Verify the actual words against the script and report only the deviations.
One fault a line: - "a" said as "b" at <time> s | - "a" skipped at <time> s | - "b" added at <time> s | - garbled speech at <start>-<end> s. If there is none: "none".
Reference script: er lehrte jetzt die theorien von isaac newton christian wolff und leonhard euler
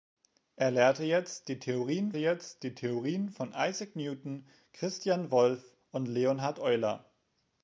- "jetzt die theorien" added at 2.2 s